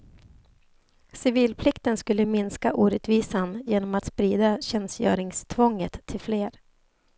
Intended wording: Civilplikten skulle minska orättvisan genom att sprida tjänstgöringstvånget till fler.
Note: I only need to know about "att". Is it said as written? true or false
true